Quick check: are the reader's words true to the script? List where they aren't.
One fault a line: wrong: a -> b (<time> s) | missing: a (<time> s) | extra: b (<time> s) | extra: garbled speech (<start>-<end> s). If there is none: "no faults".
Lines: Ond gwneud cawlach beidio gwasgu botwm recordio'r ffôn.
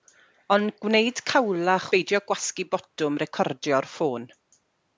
no faults